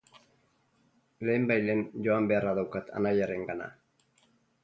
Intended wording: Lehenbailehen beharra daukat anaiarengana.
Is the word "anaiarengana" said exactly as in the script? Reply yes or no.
yes